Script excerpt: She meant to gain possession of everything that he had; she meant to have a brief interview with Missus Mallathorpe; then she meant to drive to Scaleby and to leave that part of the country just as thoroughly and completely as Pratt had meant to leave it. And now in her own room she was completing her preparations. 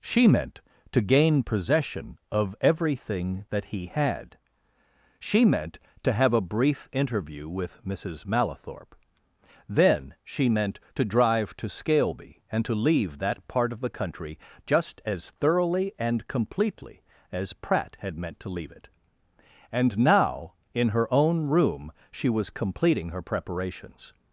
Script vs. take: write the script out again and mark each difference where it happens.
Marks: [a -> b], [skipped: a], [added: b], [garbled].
She meant to gain possession of everything that he had; she meant to have a brief interview with Missus Mallathorpe; then she meant to drive to Scaleby and to leave that part of the country just as thoroughly and completely as Pratt had meant to leave it. And now in her own room she was completing her preparations.